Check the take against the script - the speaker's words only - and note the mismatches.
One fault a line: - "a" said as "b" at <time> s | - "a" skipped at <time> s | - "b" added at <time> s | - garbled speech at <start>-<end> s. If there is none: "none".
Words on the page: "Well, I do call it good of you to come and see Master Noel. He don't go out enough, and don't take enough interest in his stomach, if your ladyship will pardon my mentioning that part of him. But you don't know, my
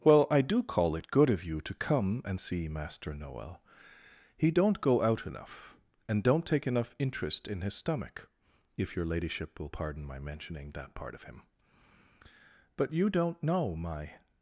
none